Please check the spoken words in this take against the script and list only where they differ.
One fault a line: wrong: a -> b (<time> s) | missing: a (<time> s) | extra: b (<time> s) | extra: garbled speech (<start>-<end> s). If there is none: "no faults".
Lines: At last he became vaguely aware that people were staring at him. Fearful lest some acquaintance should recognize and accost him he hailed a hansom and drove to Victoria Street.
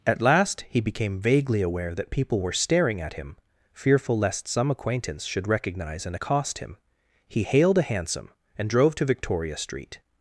no faults